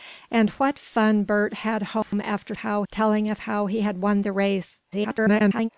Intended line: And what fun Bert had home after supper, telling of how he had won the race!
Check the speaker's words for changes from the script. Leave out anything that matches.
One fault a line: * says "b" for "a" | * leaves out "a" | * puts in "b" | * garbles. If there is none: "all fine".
* says "how" for "supper"
* garbles